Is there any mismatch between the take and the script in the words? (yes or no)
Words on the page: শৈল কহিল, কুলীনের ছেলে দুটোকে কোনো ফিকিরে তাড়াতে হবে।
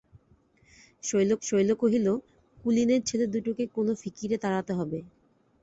yes